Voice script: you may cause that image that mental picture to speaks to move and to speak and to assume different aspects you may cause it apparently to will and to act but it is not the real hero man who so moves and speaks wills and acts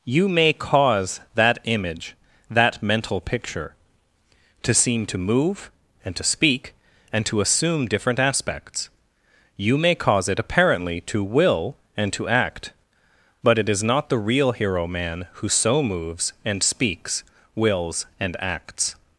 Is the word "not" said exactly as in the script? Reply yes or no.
yes